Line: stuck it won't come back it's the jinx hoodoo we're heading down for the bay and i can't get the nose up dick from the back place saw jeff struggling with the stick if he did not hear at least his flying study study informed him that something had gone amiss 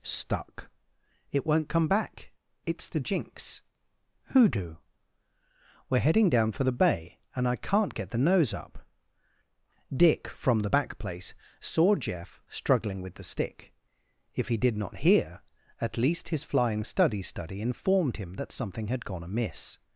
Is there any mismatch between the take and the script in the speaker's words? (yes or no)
no